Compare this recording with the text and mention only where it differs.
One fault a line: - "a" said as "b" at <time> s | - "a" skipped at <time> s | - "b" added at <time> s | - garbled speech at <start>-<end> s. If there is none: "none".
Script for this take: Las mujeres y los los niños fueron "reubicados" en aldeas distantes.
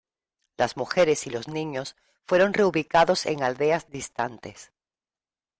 - "los" skipped at 1.5 s